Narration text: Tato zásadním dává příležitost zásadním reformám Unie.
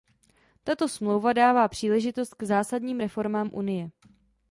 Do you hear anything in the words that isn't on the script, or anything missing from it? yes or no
yes